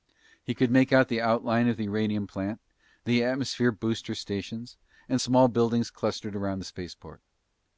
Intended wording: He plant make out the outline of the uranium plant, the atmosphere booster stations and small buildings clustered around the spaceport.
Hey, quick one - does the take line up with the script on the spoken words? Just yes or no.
no